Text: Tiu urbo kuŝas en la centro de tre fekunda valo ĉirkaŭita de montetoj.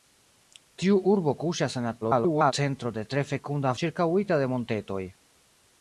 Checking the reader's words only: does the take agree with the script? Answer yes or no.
no